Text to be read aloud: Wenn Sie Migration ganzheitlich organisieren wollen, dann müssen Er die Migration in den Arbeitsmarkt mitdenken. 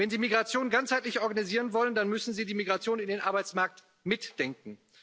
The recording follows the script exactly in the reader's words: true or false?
false